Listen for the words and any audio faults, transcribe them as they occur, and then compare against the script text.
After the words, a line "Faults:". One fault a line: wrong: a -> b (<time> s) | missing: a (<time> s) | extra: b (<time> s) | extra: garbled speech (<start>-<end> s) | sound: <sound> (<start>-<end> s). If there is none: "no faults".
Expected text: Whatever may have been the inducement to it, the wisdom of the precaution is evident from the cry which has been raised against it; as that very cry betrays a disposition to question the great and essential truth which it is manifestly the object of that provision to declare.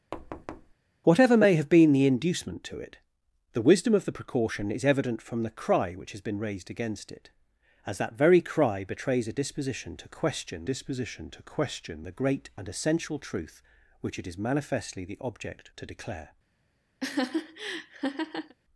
Whatever may have been the inducement to it, the wisdom of the precaution is evident from the cry which has been raised against it; as that very cry betrays a disposition to question disposition to question the great and essential truth which it is manifestly the object to declare.
Faults:
sound: thud (0.1-0.7 s)
extra: disposition to question (10.6 s)
missing: of that provision (15.7 s)
sound: laugh (17.0-18.5 s)